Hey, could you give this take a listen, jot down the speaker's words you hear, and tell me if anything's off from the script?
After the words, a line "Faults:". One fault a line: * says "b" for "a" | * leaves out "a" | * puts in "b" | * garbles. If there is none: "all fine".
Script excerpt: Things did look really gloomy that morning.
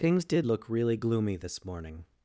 Things did look really gloomy this morning.
Faults:
* says "this" for "that"